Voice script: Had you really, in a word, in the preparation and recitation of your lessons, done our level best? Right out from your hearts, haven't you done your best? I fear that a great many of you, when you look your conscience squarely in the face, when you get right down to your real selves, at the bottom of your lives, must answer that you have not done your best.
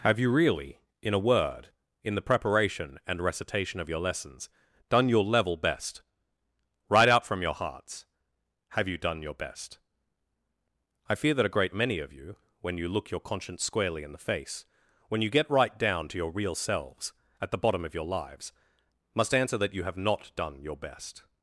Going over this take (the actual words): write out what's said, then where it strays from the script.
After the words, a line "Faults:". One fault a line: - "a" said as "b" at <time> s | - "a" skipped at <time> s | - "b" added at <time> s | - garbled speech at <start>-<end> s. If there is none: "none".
Have you really, in a word, in the preparation and recitation of your lessons, done your level best? Right out from your hearts, have you done your best? I fear that a great many of you, when you look your conscience squarely in the face, when you get right down to your real selves, at the bottom of your lives, must answer that you have not done your best.
Faults:
- "Had" said as "Have" at 0.0 s
- "our" said as "your" at 5.1 s
- "haven't" said as "have" at 8.7 s